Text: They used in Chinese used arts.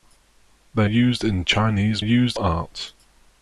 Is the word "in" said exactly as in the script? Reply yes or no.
yes